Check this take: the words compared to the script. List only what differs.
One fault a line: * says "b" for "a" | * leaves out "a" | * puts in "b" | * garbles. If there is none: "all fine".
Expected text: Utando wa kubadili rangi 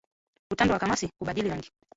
* puts in "kamasi"